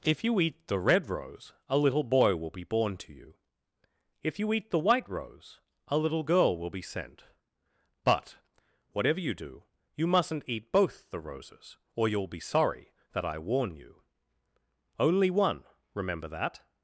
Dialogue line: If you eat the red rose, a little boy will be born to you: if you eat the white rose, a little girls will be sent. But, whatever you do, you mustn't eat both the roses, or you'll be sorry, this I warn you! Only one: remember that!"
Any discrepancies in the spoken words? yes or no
yes